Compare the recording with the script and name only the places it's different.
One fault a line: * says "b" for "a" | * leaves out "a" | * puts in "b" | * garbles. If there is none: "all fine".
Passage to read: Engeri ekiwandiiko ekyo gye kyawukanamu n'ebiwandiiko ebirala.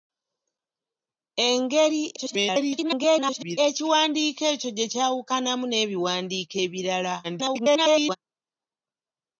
* garbles
* garbles